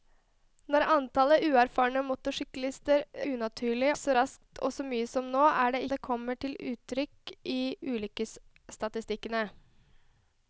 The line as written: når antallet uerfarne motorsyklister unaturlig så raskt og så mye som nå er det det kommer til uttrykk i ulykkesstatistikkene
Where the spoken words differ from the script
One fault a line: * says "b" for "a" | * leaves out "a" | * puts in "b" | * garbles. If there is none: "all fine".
all fine